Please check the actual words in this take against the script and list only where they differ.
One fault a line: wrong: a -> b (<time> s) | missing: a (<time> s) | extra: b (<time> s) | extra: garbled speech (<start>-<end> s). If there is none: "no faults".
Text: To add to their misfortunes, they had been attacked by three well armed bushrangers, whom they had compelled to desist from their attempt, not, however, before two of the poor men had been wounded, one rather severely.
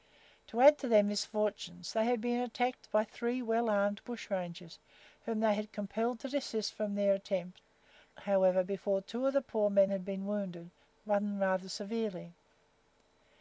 missing: not (7.6 s)